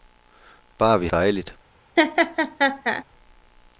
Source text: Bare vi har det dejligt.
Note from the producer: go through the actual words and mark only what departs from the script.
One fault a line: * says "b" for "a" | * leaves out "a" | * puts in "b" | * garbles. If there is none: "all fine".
* leaves out "har det"